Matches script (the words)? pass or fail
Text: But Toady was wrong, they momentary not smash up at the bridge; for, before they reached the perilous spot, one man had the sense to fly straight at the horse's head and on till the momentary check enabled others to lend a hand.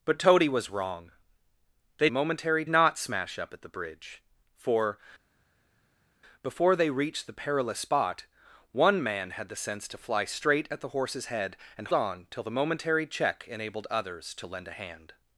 pass